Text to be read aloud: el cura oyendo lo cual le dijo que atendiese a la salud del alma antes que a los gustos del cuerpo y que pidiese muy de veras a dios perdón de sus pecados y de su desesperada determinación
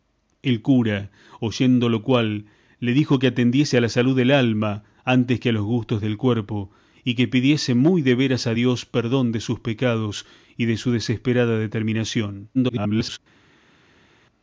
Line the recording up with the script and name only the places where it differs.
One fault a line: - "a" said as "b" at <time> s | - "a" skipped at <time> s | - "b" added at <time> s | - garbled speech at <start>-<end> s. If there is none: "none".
- garbled speech at 12.5-13.2 s